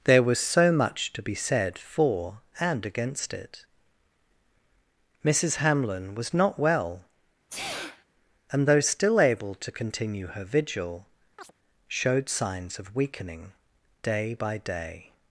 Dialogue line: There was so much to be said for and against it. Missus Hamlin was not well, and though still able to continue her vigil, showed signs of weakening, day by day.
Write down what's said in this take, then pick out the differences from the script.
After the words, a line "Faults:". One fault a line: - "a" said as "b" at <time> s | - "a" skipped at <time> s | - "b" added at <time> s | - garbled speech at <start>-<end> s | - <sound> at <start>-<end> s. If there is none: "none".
There was so much to be said for and against it. Missus Hamlin was not well, and though still able to continue her vigil, showed signs of weakening, day by day.
Faults:
- sneeze at 7.5-8.1 s
- chirp at 11.4-11.5 s